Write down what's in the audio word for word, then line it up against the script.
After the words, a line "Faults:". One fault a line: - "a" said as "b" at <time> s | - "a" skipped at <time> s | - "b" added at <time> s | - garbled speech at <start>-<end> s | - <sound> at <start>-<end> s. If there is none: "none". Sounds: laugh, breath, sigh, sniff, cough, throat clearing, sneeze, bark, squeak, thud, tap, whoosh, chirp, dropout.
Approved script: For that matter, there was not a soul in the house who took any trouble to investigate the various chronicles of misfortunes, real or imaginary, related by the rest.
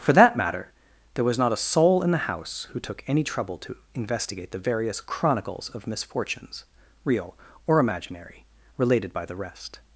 For that matter, there was not a soul in the house who took any trouble to investigate the various chronicles of misfortunes, real or imaginary, related by the rest.
Faults:
none